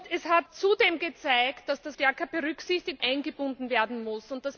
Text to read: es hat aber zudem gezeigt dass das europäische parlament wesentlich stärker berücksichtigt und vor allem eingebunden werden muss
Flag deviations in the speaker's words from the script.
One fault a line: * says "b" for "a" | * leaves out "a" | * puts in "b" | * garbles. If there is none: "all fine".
* leaves out "aber"
* leaves out "europäische parlament wesentlich"
* leaves out "und vor allem"